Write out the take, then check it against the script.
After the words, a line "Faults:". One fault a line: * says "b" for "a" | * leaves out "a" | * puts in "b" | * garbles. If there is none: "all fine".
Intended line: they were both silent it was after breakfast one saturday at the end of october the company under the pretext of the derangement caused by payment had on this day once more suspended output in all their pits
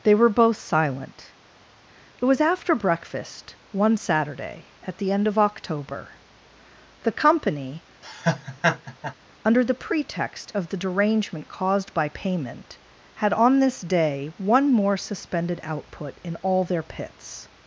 they were both silent it was after breakfast one saturday at the end of october the company under the pretext of the derangement caused by payment had on this day one more suspended output in all their pits
Faults:
* says "one" for "once"